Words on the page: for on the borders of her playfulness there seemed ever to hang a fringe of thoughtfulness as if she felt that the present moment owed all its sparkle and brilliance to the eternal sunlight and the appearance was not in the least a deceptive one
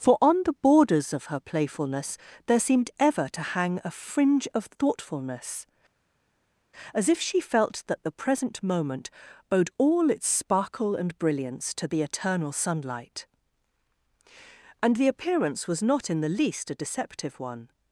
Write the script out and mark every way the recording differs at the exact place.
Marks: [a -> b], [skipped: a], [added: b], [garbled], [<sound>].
for on the borders of her playfulness there seemed ever to hang a fringe of thoughtfulness as if she felt that the present moment owed all its sparkle and brilliance to the eternal sunlight and the appearance was not in the least a deceptive one